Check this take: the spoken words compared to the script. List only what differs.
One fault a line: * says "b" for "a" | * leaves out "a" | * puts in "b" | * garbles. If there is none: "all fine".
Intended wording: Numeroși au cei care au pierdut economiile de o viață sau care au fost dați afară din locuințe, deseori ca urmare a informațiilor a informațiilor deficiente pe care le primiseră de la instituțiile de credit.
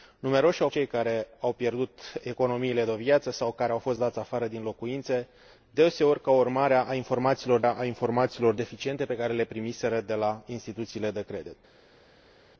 all fine